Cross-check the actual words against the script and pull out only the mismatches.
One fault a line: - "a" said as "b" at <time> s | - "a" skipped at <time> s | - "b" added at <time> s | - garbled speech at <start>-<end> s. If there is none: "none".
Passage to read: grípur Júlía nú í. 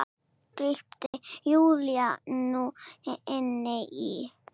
- "inn" added at 3.4 s